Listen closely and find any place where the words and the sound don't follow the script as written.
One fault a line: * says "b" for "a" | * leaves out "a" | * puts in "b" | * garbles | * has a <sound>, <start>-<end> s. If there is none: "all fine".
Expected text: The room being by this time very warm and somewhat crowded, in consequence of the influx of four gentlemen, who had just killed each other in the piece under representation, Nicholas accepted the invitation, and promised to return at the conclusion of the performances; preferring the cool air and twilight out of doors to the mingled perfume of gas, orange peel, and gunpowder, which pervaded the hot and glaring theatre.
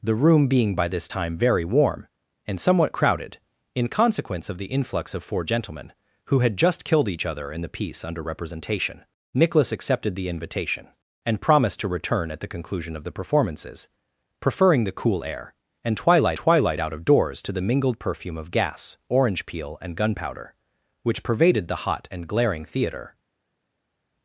* puts in "twilight"